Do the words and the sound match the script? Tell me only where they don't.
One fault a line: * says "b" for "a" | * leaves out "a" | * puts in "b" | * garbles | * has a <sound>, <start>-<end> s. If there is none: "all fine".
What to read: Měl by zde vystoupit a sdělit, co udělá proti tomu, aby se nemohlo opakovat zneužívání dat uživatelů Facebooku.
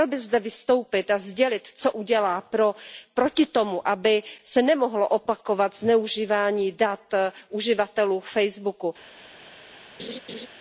* has a laugh, 10.0-10.5 s